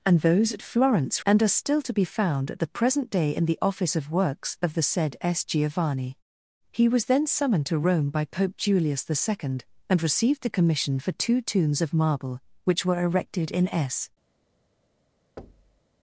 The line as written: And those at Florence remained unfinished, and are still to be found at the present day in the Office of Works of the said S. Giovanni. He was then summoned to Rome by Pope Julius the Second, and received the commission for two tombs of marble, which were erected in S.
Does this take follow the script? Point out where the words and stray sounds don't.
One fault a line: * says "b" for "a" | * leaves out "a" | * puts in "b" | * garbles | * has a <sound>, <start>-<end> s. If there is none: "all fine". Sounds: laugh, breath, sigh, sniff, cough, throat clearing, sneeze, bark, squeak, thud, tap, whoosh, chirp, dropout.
* leaves out "remained unfinished"
* has a thud, 15.4-15.8 s